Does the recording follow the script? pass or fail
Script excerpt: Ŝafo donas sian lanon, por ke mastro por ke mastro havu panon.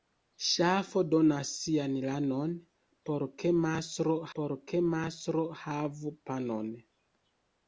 pass